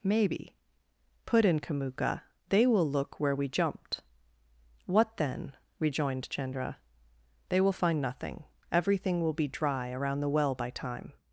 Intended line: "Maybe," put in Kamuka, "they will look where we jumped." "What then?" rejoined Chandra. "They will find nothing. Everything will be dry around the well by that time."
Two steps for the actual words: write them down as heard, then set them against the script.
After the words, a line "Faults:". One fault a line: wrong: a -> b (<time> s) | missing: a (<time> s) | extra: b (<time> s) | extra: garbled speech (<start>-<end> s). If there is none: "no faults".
"Maybe," put in Kamuka, "they will look where we jumped." "What then?" rejoined Chandra. "They will find nothing. Everything will be dry around the well by time."
Faults:
missing: that (10.7 s)